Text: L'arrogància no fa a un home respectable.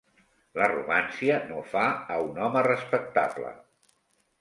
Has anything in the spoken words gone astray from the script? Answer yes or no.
no